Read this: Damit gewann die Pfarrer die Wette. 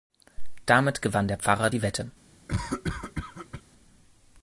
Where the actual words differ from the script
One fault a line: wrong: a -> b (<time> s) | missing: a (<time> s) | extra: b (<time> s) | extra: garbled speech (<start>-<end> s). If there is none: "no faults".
wrong: die -> der (1.3 s)